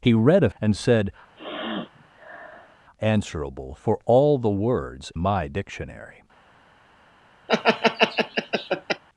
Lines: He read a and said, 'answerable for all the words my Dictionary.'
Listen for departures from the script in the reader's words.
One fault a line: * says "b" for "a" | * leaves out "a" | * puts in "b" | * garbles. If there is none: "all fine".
all fine